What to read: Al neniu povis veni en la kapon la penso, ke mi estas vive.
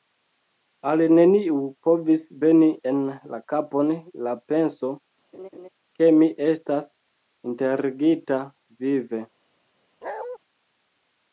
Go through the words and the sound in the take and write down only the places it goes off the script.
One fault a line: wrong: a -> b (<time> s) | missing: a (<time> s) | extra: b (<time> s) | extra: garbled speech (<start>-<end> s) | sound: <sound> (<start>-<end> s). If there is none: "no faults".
sound: laugh (5.3-5.7 s)
extra: enterigita (7.5 s)
sound: bark (10.0-10.4 s)